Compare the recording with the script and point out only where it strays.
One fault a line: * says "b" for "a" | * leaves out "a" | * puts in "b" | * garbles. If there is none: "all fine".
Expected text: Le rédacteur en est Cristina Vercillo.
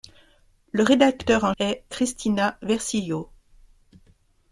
all fine